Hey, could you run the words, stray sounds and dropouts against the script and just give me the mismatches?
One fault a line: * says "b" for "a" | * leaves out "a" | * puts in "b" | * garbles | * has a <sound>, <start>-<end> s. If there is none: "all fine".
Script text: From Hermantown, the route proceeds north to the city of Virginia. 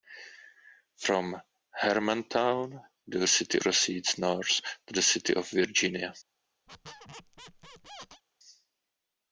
* says "city" for "route"
* has a squeak, 6.7-8.2 s